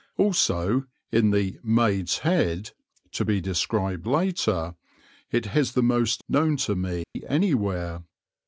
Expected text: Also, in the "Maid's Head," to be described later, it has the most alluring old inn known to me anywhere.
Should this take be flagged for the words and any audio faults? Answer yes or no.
yes